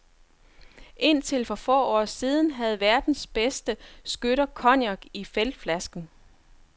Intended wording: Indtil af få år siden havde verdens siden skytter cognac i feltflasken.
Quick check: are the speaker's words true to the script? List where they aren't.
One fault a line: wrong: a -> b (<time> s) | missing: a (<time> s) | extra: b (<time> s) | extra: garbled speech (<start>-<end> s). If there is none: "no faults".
wrong: af -> for (1.4 s)
wrong: siden -> bedste (3.3 s)